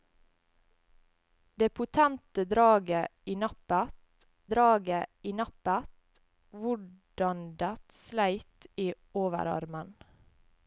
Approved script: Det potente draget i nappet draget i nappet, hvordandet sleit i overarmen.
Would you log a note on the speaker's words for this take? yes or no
no